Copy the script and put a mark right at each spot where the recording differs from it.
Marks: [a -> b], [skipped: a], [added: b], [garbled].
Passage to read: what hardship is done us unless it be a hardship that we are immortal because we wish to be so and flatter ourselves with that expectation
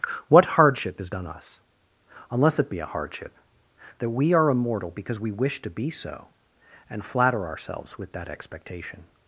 what hardship is done us unless it be a hardship that we are immortal because we wish to be so and flatter ourselves with that expectation